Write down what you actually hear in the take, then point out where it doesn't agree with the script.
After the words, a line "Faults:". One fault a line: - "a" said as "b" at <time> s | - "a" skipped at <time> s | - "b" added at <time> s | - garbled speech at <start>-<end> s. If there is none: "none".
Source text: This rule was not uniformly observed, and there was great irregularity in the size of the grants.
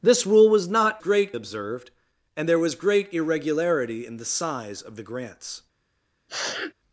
This rule was not great observed, and there was great irregularity in the size of the grants.
Faults:
- "uniformly" said as "great" at 1.0 s